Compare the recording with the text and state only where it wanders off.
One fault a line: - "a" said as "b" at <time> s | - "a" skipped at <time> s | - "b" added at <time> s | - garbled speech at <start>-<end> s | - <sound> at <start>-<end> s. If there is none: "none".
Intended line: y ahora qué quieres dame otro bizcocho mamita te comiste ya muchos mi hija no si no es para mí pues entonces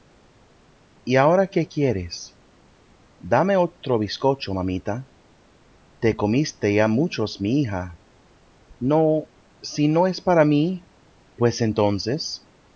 none